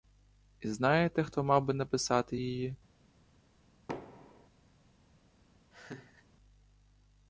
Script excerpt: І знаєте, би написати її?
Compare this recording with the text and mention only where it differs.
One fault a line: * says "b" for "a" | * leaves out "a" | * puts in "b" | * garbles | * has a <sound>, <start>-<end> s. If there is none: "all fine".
* puts in "хто мав"
* has a thud, 3.9-4.5 s
* has a laugh, 5.7-6.3 s